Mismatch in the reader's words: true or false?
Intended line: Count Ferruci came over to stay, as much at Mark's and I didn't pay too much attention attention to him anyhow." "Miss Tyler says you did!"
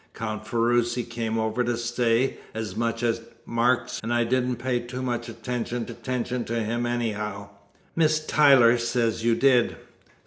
false